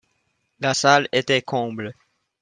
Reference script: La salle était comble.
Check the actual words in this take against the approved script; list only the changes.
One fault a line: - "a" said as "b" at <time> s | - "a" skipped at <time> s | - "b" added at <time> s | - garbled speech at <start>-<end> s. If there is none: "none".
none